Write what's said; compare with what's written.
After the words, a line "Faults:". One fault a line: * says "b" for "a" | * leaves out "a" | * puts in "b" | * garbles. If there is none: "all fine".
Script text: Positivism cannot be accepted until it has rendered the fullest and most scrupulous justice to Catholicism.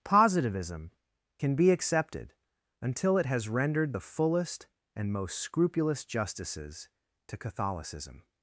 Positivism can be accepted until it has rendered the fullest and most scrupulous justices to Catholicism.
Faults:
* says "can" for "cannot"
* says "justices" for "justice"